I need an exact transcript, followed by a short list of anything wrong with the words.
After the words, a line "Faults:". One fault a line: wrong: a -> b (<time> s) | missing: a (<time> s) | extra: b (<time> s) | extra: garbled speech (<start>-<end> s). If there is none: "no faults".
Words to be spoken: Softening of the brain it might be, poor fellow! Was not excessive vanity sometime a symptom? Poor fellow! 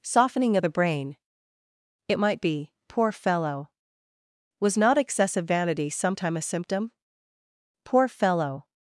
Softening of the brain it might be, poor fellow! Was not excessive vanity sometime a symptom? Poor fellow!
Faults:
no faults